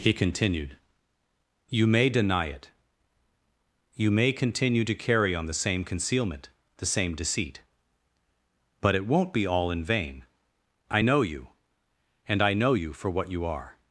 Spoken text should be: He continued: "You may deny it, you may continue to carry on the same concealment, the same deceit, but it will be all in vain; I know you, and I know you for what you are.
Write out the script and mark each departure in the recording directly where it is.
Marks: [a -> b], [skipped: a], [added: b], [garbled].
He continued: "You may deny it, you may continue to carry on the same concealment, the same deceit, but it [will -> won't] be all in vain; I know you, and I know you for what you are.